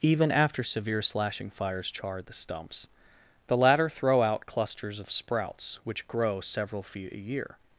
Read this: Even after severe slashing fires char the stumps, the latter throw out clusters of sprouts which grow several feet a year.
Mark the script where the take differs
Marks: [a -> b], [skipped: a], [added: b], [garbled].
Even after severe slashing fires char the stumps, the latter throw out clusters of sprouts which grow several feet a year.